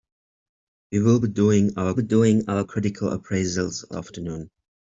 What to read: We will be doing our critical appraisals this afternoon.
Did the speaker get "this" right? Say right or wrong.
wrong